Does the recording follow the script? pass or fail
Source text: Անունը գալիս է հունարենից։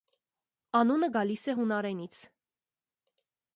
pass